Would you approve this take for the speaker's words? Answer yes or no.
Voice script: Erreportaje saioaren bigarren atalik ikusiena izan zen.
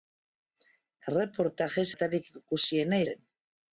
no